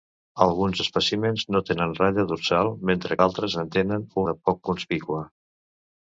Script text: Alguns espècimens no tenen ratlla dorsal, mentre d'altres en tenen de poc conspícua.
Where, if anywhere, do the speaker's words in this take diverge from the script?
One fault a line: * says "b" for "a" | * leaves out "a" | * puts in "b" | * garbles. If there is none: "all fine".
all fine